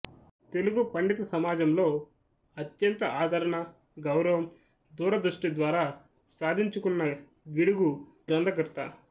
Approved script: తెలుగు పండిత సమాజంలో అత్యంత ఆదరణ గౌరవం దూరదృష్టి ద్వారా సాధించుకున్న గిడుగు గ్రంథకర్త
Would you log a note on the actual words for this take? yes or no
no